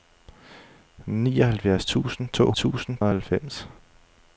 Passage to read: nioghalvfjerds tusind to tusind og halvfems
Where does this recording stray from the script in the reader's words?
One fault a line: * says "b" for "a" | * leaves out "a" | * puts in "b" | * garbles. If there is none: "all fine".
all fine